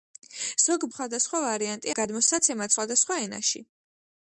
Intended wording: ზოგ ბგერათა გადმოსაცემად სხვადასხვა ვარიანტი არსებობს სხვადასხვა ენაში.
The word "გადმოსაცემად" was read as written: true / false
false